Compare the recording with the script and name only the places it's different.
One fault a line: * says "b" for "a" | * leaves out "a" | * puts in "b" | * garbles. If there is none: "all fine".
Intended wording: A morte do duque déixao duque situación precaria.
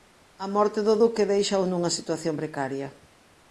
* says "nunha" for "duque"